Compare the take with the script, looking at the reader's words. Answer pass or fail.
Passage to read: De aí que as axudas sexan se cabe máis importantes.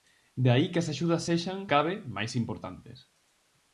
fail